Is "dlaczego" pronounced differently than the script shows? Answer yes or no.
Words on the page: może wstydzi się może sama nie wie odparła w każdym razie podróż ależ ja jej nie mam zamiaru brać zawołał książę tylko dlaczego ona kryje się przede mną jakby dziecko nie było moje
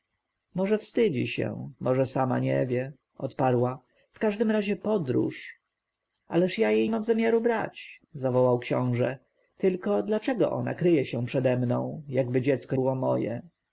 no